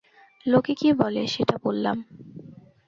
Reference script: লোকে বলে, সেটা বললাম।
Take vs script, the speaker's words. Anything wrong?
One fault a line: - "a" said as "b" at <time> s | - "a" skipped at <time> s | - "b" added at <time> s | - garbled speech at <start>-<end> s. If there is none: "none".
- "কী" added at 0.7 s